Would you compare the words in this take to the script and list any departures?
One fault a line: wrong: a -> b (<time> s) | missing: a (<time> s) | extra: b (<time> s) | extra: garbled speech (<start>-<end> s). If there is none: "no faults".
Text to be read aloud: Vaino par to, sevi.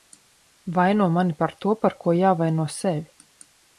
extra: mani (1.2 s)
extra: par ko jāvaino (1.8 s)